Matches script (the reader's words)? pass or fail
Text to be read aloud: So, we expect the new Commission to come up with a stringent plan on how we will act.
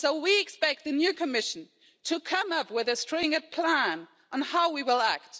pass